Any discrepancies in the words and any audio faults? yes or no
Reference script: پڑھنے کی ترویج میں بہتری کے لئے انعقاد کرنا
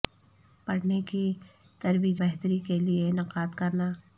yes